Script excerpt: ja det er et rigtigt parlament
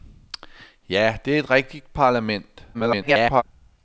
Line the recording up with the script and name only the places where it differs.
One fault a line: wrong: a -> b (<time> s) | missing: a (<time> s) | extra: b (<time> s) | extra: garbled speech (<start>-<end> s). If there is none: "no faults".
extra: garbled speech (2.7-3.4 s)